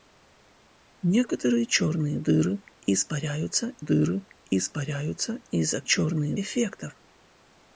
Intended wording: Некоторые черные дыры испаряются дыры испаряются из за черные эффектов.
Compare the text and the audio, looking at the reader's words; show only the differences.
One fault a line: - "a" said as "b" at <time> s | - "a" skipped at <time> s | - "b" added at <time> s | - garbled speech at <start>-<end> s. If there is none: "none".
none